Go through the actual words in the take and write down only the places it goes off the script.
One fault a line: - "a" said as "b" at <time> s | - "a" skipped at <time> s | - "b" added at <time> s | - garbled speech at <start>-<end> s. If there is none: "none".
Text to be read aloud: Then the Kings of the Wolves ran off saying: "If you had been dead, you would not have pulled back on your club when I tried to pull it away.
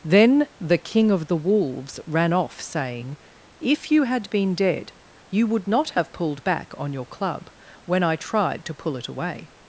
- "Kings" said as "King" at 0.8 s